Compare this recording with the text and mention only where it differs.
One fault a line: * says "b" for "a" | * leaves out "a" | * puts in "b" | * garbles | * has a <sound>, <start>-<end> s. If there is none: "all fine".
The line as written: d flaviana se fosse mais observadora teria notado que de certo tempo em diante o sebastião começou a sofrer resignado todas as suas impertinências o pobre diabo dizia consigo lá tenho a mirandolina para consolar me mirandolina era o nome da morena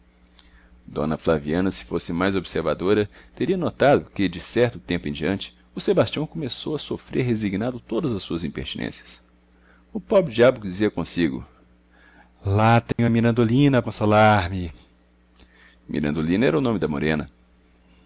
* has a dropout, 12.9-13.0 s
* leaves out "para"